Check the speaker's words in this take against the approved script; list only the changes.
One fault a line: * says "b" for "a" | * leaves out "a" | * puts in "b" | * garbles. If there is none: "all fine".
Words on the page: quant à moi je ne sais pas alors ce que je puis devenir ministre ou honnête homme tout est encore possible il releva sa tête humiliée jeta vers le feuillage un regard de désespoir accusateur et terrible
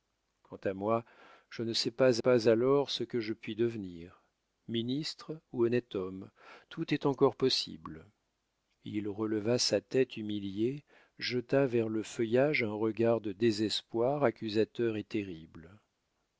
* puts in "pas"